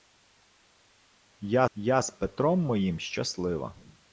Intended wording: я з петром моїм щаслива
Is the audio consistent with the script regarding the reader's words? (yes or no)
no